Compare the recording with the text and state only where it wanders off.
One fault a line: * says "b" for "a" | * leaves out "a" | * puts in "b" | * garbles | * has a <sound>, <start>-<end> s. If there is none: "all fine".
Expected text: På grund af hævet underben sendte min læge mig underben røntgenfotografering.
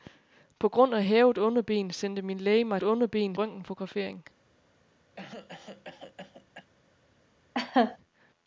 * has a cough, 5.1-6.7 s
* has a laugh, 7.5-8.0 s